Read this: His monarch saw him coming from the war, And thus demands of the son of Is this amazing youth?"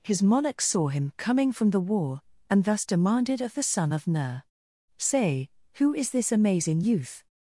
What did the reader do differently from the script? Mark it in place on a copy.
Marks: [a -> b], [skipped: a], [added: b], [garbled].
His monarch saw him coming from the war, And thus [demands -> demanded] of the son of [added: Ner Say who] Is this amazing youth?"